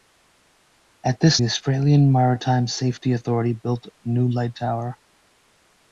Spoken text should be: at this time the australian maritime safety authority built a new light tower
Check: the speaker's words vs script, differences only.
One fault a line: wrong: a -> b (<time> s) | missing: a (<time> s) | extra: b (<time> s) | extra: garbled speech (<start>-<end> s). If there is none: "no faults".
missing: time (1.4 s)